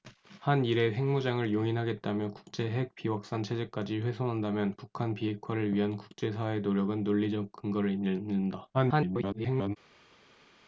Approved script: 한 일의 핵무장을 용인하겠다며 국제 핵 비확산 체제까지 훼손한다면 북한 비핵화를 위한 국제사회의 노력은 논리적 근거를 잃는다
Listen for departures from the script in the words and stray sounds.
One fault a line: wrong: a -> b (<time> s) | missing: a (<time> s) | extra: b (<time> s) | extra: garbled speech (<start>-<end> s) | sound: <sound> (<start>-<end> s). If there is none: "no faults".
extra: garbled speech (8.7-9.8 s)